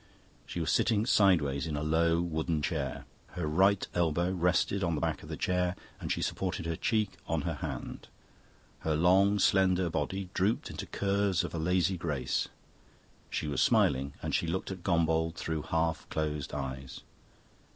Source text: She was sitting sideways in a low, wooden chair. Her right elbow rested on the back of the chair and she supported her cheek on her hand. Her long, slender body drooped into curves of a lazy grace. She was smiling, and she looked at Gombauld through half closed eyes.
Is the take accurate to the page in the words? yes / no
yes